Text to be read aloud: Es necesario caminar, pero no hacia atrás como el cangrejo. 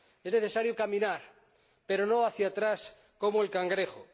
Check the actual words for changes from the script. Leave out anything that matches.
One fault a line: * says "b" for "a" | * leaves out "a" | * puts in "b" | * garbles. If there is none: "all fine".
all fine